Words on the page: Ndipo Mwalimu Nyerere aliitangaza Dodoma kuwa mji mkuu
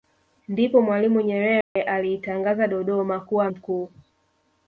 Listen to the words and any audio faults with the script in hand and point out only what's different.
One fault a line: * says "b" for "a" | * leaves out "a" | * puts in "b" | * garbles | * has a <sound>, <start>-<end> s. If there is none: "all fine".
* has a dropout, 1.6-1.8 s
* leaves out "mji"